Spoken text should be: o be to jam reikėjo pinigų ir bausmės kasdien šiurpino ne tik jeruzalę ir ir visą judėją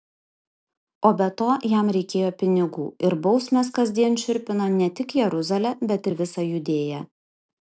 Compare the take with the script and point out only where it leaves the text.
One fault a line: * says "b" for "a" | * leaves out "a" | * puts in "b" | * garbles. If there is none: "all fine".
* says "bet" for "ir"